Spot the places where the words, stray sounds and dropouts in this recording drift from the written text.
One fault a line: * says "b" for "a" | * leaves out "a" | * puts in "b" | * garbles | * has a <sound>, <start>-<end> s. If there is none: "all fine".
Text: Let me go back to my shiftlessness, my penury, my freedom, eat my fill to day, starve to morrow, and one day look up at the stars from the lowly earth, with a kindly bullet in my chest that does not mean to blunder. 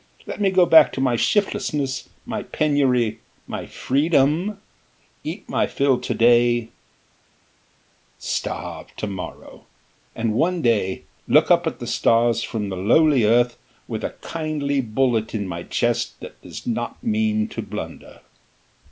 all fine